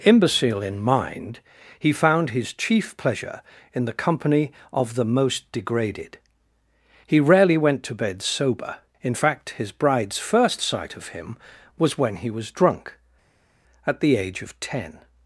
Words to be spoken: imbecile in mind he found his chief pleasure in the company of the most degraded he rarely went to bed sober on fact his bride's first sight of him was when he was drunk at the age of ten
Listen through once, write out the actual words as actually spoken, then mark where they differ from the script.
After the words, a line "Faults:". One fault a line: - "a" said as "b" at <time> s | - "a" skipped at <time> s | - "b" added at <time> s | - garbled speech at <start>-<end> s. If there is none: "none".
imbecile in mind he found his chief pleasure in the company of the most degraded he rarely went to bed sober in fact his bride's first sight of him was when he was drunk at the age of ten
Faults:
- "on" said as "in" at 9.0 s